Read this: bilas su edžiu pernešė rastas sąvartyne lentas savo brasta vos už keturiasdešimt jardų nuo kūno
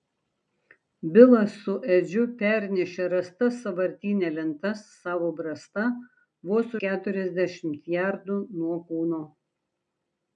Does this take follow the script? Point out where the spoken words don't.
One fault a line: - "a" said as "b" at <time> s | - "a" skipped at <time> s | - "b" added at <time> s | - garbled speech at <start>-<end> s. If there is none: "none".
- "už" skipped at 6.8 s